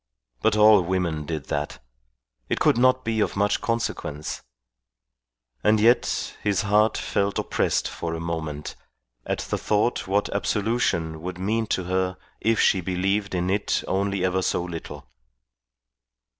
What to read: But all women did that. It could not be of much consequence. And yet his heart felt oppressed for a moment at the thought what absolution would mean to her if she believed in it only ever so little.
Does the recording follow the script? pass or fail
pass